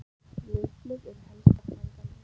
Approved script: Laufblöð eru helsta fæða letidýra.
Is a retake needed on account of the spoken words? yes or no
no